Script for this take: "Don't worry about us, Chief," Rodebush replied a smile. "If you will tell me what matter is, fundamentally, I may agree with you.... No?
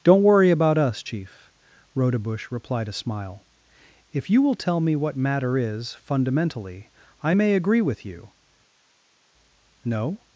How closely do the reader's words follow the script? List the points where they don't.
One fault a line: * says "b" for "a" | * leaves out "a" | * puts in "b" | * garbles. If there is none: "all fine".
all fine